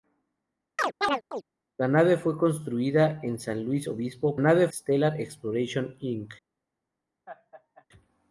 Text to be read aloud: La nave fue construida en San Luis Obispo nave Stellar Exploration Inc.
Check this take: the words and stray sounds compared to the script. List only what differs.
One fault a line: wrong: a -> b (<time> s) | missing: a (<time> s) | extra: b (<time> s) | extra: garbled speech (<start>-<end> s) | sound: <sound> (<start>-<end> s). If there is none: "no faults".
sound: chirp (0.8-1.4 s)
sound: laugh (7.3-7.9 s)